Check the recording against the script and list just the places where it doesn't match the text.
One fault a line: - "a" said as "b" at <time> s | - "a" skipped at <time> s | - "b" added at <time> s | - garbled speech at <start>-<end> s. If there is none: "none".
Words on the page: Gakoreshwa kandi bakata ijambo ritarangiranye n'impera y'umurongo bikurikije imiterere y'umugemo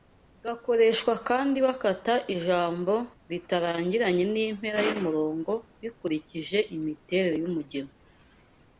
none